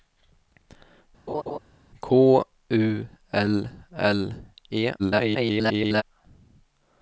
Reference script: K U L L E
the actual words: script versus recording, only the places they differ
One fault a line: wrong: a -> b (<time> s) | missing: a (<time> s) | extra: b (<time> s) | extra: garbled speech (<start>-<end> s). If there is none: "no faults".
extra: garbled speech (5.0-6.0 s)